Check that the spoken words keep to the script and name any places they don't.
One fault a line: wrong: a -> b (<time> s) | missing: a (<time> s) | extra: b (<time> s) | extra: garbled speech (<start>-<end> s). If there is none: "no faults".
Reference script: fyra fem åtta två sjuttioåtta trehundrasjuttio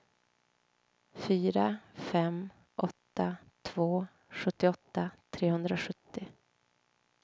no faults